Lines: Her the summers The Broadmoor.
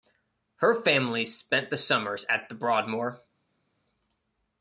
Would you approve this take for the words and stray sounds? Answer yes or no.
no